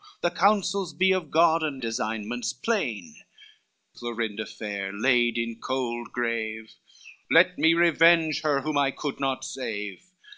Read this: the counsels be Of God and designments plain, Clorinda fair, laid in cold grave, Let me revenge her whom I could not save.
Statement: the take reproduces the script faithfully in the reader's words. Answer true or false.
true